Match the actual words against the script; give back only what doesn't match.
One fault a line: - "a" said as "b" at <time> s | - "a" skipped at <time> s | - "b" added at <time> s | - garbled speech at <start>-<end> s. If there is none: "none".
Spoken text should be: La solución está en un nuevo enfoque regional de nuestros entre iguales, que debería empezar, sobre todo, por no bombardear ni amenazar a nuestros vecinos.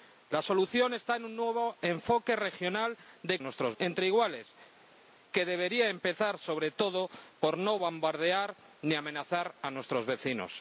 none